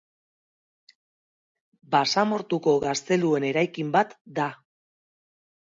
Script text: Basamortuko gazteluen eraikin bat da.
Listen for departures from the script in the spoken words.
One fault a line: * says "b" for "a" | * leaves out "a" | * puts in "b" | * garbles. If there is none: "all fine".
all fine